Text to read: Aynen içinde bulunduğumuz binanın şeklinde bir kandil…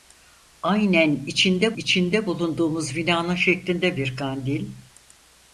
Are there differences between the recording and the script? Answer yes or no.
yes